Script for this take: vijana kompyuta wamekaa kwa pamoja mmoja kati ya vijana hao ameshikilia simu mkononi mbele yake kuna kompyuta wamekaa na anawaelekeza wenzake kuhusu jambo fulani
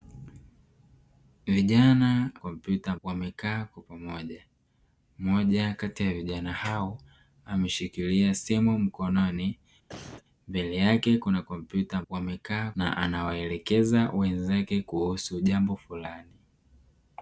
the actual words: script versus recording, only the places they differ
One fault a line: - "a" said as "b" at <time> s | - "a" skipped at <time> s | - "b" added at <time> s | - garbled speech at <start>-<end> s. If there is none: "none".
none